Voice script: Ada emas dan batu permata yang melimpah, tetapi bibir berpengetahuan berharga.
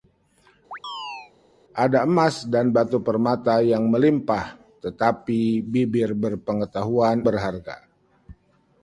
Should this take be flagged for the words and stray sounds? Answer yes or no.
yes